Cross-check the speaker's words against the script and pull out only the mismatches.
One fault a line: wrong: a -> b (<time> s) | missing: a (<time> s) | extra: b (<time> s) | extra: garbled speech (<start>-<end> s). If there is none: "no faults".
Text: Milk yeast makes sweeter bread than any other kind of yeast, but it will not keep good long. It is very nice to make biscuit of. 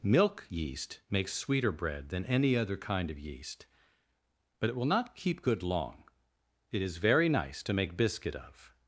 no faults